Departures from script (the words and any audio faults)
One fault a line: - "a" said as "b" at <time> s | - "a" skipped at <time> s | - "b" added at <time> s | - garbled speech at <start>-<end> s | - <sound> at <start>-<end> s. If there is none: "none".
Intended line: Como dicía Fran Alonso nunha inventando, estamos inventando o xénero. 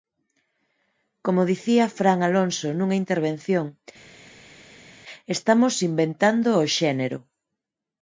- "inventando" said as "intervención" at 3.0 s